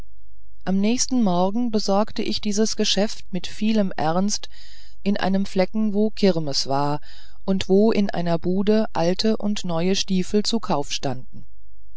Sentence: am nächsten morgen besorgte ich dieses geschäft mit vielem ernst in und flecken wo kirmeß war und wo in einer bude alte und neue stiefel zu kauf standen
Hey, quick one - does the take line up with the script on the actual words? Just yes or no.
no